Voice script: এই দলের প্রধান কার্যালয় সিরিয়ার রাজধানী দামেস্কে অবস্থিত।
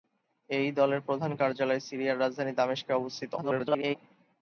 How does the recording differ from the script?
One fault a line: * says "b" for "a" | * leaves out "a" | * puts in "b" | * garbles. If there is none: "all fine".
* garbles